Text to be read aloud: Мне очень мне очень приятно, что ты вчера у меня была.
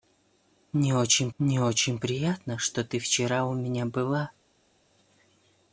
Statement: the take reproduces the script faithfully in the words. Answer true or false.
true